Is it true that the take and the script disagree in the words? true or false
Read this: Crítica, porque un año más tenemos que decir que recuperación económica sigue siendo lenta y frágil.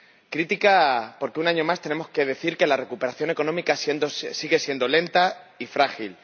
true